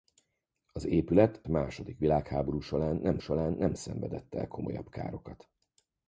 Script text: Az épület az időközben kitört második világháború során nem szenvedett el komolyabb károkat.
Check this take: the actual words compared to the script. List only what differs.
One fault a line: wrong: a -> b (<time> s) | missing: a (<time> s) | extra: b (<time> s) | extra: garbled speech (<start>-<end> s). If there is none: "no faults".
wrong: az időközben kitört második világháború -> második világháború során nem (1.5 s)